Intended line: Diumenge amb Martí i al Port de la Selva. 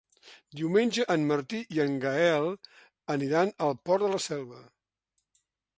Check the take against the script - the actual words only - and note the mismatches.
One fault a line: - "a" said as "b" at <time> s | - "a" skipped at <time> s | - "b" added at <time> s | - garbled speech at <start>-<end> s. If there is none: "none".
- "amb" said as "en" at 1.2 s
- "en Gaël aniran" added at 1.9 s